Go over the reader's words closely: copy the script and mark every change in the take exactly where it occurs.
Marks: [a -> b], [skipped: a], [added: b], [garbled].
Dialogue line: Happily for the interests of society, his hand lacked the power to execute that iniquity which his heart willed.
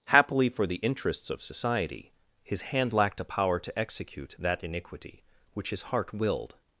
Happily for the interests of society, his hand lacked [the -> a] power to execute that iniquity which his heart willed.